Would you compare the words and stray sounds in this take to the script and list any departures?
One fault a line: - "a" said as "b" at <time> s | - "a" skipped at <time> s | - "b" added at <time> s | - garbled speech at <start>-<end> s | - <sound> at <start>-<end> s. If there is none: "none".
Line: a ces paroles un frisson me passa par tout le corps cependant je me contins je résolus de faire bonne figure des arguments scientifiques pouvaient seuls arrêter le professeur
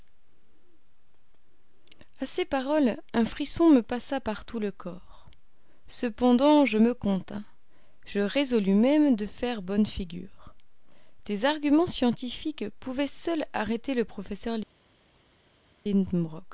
- "même" added at 8.7 s